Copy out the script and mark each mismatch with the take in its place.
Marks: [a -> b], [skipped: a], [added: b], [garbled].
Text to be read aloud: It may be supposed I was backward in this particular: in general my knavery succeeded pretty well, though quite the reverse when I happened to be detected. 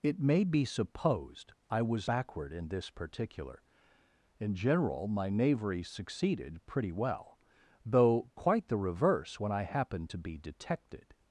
It may be supposed I was backward in this particular: in general my knavery succeeded pretty well, though quite the reverse when I happened to be detected.